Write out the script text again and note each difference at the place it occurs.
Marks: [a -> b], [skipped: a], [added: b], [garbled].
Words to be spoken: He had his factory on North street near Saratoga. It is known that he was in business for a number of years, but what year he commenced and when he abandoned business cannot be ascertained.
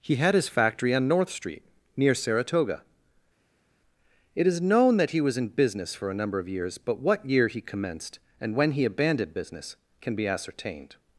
He had his factory on North street near Saratoga. It is known that he was in business for a number of years, but what year he commenced and when he abandoned business [cannot -> can] be ascertained.